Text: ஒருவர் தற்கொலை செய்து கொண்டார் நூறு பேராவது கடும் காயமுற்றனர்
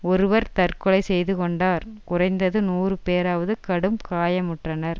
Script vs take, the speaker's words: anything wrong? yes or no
yes